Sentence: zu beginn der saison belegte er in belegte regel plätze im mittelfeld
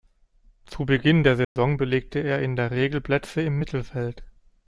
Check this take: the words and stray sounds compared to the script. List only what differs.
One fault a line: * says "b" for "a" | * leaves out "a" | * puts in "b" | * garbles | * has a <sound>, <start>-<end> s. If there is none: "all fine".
* has a dropout, 1.4-1.6 s
* says "der" for "belegte"